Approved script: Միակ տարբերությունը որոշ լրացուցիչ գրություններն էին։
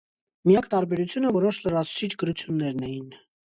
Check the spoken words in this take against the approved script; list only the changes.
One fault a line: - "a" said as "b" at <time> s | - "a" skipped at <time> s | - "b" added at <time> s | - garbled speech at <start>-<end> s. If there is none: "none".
none